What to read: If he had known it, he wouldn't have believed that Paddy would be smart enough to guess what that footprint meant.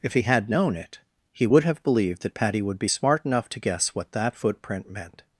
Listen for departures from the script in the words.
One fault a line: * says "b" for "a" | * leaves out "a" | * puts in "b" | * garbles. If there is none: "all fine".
* says "would" for "wouldn't"